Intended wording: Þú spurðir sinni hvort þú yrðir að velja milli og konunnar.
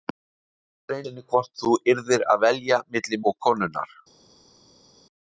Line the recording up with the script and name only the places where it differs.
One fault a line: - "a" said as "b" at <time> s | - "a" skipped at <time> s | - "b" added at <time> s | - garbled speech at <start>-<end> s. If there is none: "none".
none